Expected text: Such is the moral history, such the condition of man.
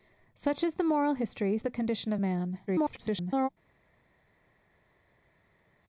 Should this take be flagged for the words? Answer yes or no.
yes